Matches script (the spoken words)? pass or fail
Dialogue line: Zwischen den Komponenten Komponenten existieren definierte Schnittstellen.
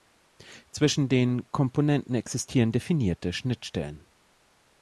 fail